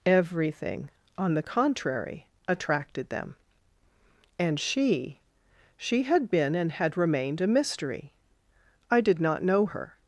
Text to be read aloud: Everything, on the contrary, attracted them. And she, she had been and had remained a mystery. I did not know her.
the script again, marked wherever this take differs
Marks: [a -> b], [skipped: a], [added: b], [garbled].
Everything, on the contrary, attracted them. And she, she had been and had remained a mystery. I did not know her.